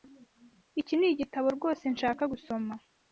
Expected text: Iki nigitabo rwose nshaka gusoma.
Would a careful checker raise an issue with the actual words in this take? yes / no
no